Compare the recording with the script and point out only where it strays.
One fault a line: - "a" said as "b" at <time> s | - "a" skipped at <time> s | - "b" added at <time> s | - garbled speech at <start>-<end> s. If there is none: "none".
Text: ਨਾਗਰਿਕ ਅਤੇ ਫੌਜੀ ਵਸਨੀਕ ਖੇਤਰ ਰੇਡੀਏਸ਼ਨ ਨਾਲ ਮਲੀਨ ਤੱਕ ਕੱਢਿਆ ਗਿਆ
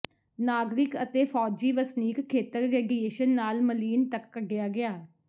none